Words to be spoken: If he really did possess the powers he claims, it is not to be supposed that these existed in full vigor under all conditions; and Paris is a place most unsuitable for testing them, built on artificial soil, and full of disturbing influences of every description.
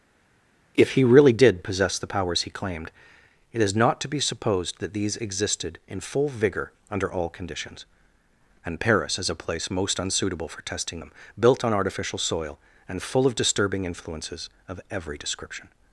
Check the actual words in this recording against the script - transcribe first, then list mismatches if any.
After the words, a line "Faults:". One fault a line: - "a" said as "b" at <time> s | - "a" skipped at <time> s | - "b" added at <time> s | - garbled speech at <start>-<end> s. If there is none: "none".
If he really did possess the powers he claimed, it is not to be supposed that these existed in full vigor under all conditions; and Paris is a place most unsuitable for testing them, built on artificial soil, and full of disturbing influences of every description.
Faults:
- "claims" said as "claimed" at 2.5 s